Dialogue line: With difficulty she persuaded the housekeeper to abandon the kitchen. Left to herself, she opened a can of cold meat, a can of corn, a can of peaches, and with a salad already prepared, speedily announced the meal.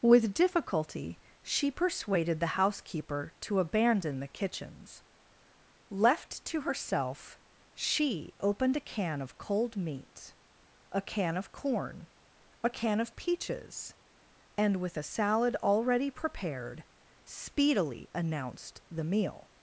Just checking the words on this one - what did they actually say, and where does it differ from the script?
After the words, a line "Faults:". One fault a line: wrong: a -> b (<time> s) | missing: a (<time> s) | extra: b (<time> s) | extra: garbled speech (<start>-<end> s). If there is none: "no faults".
With difficulty she persuaded the housekeeper to abandon the kitchens. Left to herself, she opened a can of cold meat, a can of corn, a can of peaches, and with a salad already prepared, speedily announced the meal.
Faults:
wrong: kitchen -> kitchens (4.3 s)